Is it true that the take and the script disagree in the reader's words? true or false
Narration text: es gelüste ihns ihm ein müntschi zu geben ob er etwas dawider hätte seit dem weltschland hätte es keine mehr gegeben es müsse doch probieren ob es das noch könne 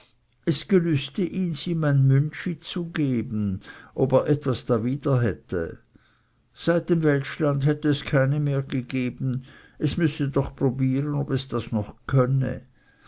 false